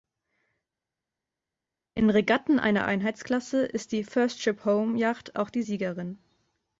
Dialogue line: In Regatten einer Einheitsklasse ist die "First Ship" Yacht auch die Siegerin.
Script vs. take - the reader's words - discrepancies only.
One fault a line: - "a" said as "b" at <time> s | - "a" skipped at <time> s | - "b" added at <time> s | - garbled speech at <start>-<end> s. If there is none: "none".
- "Home" added at 4.7 s